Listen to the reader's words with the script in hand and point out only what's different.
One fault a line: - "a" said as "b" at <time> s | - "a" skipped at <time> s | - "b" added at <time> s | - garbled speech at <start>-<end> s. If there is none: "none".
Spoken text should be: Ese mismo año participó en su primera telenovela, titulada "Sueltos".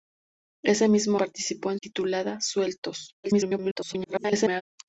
- "año" skipped at 1.2 s
- "su primera telenovela" skipped at 1.8 s
- garbled speech at 3.2-4.6 s